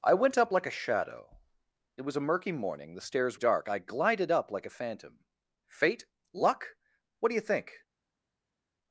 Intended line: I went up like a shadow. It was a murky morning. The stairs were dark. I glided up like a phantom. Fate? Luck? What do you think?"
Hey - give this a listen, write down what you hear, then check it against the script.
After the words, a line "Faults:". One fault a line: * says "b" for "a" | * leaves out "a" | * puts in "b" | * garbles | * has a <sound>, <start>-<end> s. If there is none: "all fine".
I went up like a shadow. It was a murky morning. The stairs dark. I glided up like a phantom. Fate? Luck? What do you think?"
Faults:
* leaves out "were"